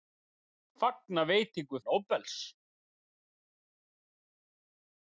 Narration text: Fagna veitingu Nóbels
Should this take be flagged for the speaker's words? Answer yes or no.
no